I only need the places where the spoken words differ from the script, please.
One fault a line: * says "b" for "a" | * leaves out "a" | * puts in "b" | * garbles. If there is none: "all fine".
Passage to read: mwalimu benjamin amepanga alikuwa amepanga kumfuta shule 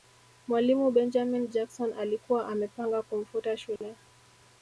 * says "jackson" for "amepanga"